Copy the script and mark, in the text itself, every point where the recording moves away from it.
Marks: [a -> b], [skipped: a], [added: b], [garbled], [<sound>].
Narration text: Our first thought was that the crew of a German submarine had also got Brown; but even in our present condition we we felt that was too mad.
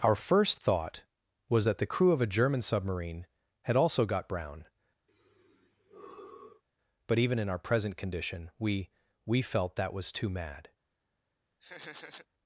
Our first thought was that the crew of a German submarine had also got Brown; [sigh] but even in our present condition we we felt that was too mad. [laugh]